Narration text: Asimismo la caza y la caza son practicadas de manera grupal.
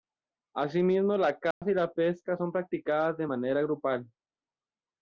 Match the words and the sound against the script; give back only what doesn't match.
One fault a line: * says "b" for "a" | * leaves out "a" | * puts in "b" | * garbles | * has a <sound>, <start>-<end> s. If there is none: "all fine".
* has a dropout, 1.5-1.6 s
* says "pesca" for "caza"